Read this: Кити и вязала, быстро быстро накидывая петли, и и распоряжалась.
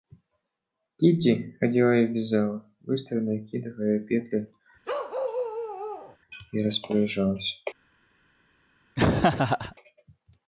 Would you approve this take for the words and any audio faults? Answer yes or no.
no